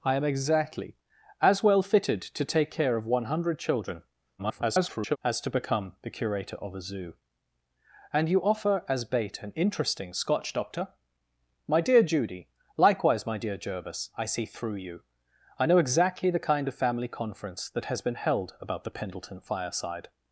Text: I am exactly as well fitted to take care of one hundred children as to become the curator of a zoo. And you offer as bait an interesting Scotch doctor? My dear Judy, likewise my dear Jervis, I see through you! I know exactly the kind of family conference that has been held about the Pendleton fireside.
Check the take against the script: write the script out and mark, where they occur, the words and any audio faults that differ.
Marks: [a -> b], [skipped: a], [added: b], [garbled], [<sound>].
I am exactly as well fitted to take care of one hundred children [garbled] as to become the curator of a zoo. And you offer as bait an interesting Scotch doctor? My dear Judy, likewise my dear Jervis, I see through you! I know exactly the kind of family conference that has been held about the Pendleton fireside.